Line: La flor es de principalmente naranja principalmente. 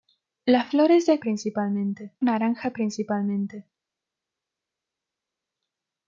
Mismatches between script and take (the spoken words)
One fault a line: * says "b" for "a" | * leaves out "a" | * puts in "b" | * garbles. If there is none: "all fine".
all fine